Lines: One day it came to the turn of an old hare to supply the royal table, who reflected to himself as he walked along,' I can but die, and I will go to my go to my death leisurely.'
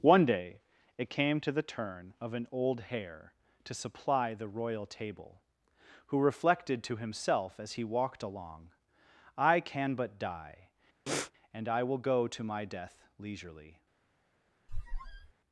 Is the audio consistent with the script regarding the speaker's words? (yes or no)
no